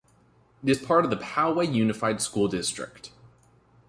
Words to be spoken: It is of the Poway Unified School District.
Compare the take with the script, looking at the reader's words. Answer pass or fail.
fail